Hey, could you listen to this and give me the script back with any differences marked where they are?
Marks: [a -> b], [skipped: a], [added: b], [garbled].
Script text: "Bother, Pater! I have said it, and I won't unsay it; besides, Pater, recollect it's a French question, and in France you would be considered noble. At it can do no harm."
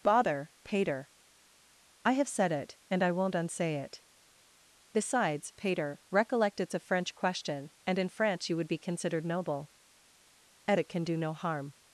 "Bother, Pater! I have said it, and I won't unsay it; besides, Pater, recollect it's a French question, and in France you would be considered noble. At it can do no harm."